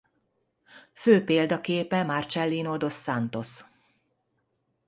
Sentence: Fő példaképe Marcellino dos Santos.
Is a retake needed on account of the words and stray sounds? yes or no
no